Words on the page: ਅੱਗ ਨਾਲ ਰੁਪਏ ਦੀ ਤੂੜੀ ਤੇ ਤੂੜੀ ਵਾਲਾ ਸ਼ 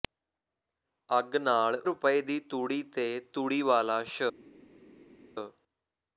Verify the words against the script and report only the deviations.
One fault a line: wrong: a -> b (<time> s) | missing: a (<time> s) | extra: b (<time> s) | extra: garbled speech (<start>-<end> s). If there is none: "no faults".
no faults